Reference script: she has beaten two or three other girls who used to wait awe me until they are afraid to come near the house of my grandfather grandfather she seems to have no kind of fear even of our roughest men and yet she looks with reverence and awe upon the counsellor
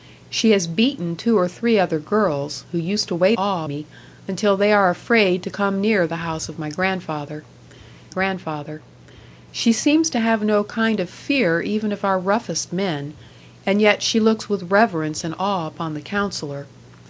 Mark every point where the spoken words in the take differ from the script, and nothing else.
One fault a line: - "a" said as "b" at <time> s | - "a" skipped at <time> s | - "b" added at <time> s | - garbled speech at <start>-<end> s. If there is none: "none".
none